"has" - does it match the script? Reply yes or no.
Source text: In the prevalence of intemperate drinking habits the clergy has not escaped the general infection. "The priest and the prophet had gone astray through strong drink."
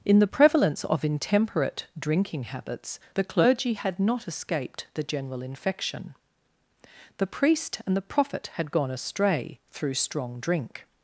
no